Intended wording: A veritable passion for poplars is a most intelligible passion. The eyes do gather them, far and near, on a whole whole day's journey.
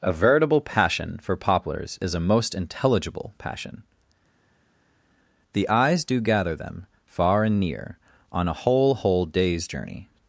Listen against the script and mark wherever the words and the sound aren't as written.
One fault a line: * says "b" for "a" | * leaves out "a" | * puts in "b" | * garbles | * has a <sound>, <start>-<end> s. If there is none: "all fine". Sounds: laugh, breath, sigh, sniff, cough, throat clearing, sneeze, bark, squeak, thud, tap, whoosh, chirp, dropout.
all fine